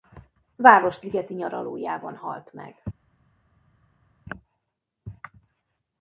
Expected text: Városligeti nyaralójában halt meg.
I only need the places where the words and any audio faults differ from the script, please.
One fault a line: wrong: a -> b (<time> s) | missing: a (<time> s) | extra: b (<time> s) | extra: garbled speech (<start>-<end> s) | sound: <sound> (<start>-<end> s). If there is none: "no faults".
no faults